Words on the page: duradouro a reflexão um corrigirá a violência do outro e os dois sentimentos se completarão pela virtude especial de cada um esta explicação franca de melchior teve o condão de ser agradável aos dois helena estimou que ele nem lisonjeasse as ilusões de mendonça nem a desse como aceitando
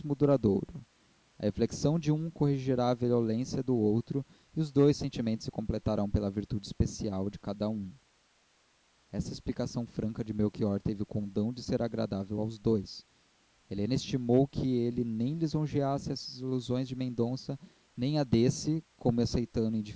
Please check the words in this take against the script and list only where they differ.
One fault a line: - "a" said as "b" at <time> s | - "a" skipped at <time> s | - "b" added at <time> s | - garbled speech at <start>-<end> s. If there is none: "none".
- "de" added at 2.0 s